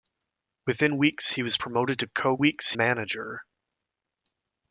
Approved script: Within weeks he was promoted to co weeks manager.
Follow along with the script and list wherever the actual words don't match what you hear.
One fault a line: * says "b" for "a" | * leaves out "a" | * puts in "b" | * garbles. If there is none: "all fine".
all fine